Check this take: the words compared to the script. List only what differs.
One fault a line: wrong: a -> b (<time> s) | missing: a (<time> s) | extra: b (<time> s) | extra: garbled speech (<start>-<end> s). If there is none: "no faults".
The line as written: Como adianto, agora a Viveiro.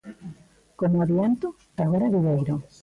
no faults